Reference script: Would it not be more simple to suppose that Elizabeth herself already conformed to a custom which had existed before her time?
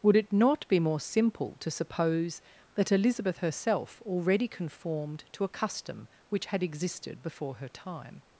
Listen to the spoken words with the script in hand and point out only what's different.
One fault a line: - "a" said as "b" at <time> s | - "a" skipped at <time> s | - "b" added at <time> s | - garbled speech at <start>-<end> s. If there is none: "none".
none